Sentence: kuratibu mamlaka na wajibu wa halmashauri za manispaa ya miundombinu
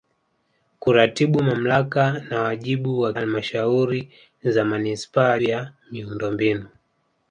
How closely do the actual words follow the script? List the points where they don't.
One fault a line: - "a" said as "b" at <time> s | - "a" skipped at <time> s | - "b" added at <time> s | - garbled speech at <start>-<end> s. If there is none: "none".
none